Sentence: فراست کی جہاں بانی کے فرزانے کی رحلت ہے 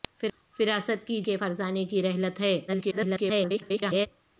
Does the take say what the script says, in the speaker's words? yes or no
no